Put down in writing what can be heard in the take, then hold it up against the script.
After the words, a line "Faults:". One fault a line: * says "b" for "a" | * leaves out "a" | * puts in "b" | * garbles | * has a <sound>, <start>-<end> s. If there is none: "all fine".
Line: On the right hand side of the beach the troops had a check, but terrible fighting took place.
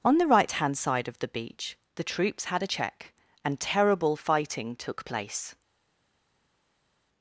On the right hand side of the beach the troops had a check, and terrible fighting took place.
Faults:
* says "and" for "but"